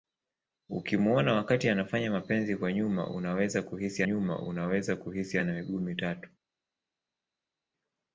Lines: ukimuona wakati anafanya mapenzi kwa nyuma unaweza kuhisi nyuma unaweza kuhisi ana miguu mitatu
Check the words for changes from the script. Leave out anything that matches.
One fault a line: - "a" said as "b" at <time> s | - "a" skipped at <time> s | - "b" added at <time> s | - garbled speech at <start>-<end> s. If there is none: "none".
none